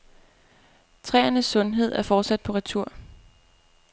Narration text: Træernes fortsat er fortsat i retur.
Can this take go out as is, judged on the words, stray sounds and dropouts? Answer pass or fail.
fail